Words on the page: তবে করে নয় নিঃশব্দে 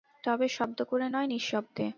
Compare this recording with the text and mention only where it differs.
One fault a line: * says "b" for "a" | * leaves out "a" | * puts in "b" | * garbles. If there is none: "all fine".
* puts in "শব্দ"